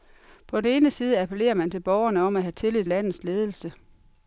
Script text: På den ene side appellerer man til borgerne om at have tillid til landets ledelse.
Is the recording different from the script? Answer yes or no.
yes